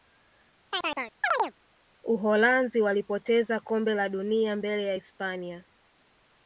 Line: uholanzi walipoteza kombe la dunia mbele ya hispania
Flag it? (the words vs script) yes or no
no